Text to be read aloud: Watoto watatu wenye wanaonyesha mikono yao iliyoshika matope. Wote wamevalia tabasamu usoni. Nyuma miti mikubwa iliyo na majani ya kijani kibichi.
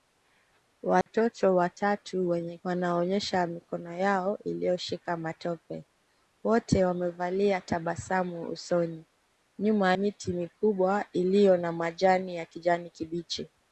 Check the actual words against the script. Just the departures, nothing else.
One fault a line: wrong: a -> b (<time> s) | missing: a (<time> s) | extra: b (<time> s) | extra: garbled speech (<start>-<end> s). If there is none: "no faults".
no faults